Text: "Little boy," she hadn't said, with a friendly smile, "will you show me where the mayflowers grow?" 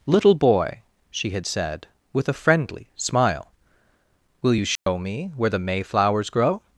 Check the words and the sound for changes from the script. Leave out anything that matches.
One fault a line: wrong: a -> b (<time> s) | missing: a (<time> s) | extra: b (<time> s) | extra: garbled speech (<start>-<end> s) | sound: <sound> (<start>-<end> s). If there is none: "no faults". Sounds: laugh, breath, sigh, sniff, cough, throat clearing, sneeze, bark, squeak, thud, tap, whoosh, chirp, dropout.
wrong: hadn't -> had (1.3 s)
sound: dropout (4.8-4.9 s)